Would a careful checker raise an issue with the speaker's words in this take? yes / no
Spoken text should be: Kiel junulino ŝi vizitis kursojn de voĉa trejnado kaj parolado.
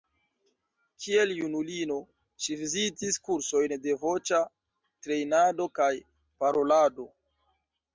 no